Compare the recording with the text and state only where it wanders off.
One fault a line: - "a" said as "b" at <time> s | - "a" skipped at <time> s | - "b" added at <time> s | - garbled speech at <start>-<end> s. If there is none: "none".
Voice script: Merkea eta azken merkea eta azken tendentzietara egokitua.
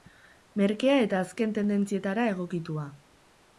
- "merkea eta azken" skipped at 1.5 s